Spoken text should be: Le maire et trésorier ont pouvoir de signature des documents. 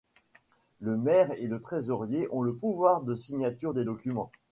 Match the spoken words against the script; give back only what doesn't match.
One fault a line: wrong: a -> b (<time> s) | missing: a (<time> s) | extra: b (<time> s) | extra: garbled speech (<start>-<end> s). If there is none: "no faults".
extra: le (1.4 s)
extra: le (2.4 s)